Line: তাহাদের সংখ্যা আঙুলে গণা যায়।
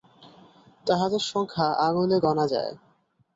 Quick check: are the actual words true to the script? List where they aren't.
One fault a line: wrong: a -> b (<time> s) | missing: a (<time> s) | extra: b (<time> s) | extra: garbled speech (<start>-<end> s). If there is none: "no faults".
no faults